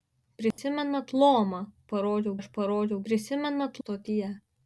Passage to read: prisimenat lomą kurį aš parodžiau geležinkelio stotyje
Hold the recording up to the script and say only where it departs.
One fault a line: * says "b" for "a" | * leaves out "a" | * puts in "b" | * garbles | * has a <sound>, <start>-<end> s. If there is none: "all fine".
* has a dropout, 0.5-0.6 s
* says "parodžiau" for "kurį"
* says "prisimenat" for "geležinkelio"